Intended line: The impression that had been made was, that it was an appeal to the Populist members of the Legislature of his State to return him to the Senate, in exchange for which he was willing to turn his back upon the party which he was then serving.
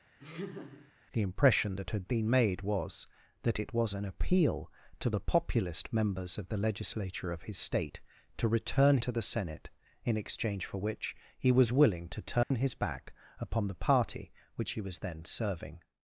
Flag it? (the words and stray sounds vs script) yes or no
yes